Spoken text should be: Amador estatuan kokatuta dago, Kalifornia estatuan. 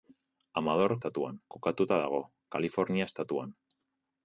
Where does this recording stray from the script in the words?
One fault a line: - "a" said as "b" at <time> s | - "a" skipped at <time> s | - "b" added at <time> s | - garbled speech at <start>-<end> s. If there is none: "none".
none